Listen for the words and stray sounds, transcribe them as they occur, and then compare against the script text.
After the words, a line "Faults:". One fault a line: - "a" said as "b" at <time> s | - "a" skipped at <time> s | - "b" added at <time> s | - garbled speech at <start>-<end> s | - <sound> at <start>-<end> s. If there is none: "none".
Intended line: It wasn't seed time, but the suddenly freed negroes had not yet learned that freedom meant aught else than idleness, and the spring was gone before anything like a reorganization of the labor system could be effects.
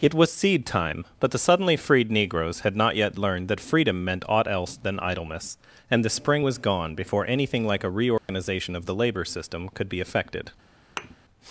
It was seed time, but the suddenly freed negroes had not yet learned that freedom meant aught else than idleness, and the spring was gone before anything like a reorganization of the labor system could be effected.
Faults:
- "wasn't" said as "was" at 0.1 s
- dropout at 8.2-8.3 s
- "effects" said as "effected" at 10.0 s
- thud at 11.0-11.2 s